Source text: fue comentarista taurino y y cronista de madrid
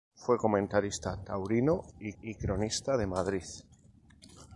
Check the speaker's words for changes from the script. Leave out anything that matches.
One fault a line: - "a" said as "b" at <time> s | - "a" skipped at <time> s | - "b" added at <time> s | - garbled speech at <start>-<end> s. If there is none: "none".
none